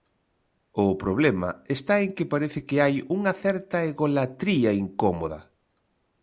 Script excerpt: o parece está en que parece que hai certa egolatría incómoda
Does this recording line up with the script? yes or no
no